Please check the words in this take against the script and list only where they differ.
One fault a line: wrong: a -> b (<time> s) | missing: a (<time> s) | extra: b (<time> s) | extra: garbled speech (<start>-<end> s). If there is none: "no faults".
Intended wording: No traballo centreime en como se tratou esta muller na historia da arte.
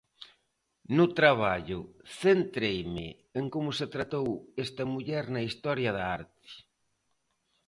no faults